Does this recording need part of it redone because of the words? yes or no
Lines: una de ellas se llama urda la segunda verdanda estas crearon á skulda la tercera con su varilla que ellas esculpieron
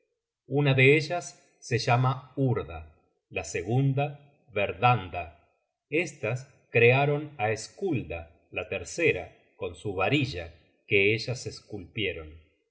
no